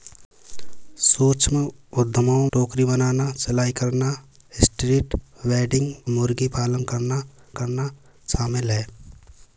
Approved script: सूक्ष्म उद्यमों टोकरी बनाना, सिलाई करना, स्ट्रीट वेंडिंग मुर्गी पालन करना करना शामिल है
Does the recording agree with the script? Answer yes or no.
yes